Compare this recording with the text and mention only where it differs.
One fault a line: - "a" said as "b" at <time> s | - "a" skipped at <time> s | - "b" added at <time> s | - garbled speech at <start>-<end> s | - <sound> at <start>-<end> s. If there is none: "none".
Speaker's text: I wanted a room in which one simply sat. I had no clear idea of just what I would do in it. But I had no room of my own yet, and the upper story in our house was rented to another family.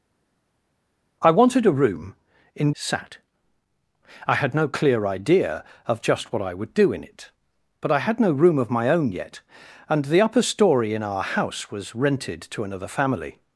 - "which one simply" skipped at 2.7 s